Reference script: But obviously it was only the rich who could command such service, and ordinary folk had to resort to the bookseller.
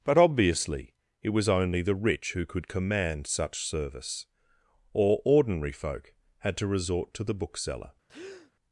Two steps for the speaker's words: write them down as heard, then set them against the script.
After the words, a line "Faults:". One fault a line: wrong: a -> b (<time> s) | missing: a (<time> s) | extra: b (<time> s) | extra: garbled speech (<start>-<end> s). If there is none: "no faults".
But obviously it was only the rich who could command such service, or ordinary folk had to resort to the bookseller.
Faults:
wrong: and -> or (4.9 s)